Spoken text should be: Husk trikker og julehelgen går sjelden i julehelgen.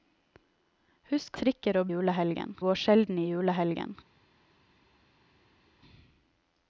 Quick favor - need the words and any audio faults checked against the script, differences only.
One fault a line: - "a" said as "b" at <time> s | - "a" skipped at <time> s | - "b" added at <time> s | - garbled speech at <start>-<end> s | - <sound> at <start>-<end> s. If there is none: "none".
none